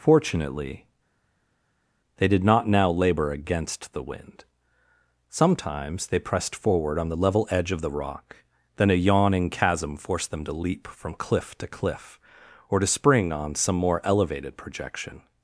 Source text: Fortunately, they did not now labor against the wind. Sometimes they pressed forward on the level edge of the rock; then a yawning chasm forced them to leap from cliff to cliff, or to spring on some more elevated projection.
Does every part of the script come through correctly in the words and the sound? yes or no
yes